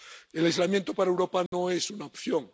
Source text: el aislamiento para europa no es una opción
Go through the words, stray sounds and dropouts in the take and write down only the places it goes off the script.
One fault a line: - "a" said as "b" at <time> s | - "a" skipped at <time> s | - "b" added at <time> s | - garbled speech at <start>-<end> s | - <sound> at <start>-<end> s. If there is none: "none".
- dropout at 1.5-1.5 s